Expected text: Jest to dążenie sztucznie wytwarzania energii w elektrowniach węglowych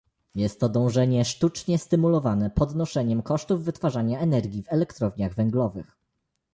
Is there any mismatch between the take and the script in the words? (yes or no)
yes